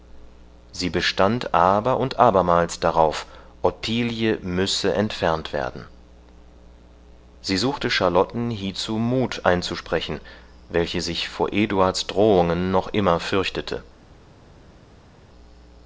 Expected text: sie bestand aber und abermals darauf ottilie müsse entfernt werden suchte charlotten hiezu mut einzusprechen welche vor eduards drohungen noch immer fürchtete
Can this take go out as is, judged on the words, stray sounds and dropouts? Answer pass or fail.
fail